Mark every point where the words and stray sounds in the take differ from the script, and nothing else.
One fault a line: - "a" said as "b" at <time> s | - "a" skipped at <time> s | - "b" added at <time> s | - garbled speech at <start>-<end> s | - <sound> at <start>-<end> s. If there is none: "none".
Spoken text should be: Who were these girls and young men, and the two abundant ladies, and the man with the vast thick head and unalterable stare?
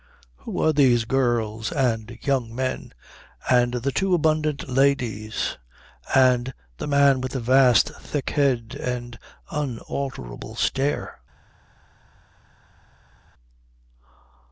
none